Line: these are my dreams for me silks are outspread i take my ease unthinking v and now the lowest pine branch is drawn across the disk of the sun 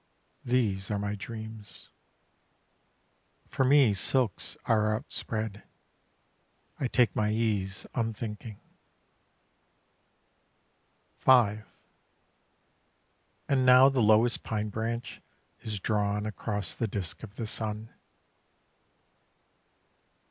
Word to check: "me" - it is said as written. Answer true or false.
true